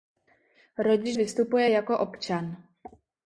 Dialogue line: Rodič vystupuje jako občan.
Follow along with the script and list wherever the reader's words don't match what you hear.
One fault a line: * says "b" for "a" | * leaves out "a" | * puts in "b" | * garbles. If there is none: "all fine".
all fine